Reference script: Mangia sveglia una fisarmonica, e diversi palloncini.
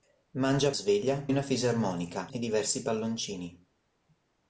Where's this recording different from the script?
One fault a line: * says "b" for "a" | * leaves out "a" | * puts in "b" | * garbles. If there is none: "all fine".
all fine